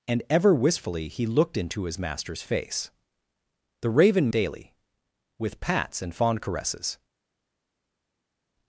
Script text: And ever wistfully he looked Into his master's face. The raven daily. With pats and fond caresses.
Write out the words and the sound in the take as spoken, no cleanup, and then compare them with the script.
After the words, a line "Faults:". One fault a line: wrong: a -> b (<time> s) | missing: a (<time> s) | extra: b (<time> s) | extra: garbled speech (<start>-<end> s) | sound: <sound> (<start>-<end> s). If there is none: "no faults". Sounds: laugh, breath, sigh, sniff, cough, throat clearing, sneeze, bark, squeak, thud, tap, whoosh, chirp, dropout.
And ever wistfully he looked Into his master's face. The raven daily. With pats and fond caresses.
Faults:
no faults